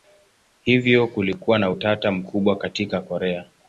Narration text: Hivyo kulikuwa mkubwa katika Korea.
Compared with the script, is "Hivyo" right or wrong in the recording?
right